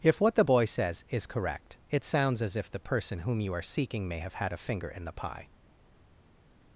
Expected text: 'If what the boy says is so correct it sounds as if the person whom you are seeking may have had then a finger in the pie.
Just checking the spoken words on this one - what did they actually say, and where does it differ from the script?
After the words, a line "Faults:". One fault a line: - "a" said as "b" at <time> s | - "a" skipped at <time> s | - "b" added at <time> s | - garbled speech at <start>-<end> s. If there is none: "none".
'If what the boy says is correct it sounds as if the person whom you are seeking may have had a finger in the pie.
Faults:
- "so" skipped at 1.3 s
- "then" skipped at 4.5 s